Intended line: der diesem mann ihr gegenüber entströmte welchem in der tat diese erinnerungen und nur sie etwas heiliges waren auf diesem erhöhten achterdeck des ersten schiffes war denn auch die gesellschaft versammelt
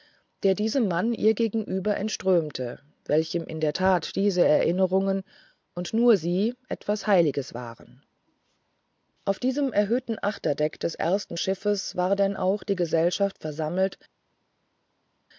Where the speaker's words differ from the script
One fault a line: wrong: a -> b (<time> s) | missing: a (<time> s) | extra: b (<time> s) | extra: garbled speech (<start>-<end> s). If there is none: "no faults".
no faults